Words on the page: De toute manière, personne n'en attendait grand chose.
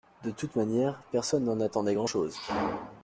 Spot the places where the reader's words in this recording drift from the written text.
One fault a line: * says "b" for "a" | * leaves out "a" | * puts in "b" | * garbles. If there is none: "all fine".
all fine